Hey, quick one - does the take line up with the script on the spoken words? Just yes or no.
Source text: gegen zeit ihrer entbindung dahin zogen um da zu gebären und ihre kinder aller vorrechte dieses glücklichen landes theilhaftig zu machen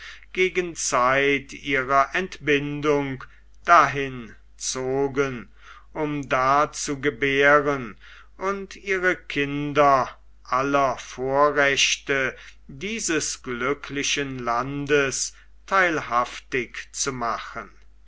yes